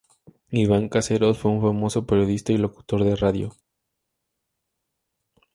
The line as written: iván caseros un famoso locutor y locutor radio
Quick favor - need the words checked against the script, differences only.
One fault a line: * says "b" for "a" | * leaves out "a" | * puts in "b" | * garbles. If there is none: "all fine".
* puts in "fue"
* says "periodista" for "locutor"
* puts in "de"